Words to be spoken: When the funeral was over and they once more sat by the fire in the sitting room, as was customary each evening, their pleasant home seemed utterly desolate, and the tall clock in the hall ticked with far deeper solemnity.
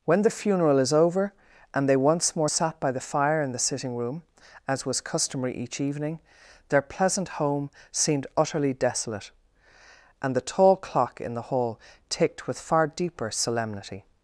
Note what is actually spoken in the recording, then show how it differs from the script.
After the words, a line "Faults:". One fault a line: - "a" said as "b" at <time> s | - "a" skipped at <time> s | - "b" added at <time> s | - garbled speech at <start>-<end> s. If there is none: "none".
When the funeral is over and they once more sat by the fire in the sitting room, as was customary each evening, their pleasant home seemed utterly desolate, and the tall clock in the hall ticked with far deeper solemnity.
Faults:
- "was" said as "is" at 0.8 s